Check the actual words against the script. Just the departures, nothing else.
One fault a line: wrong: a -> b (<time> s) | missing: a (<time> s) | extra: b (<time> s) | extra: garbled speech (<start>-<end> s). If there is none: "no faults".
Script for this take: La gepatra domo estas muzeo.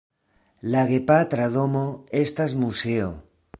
no faults